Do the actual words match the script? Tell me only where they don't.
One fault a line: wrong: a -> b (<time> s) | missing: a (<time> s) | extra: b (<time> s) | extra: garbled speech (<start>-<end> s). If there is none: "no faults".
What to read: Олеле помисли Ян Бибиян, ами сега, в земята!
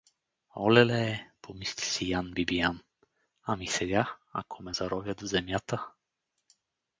extra: си (1.9 s)
extra: ако ме заровят (4.3 s)